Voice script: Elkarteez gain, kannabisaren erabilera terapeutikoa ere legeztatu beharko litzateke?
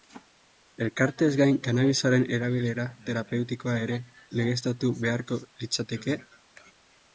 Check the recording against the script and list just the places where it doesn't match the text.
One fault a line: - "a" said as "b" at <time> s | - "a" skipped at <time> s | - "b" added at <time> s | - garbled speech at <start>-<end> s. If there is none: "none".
none